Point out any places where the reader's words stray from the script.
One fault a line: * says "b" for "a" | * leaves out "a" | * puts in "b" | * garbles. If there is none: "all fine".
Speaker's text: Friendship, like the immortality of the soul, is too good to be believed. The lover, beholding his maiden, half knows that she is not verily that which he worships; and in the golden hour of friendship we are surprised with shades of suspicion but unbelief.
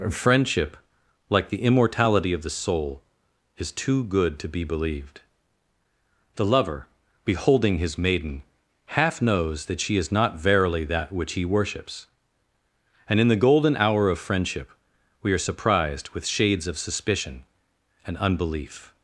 * says "and" for "but"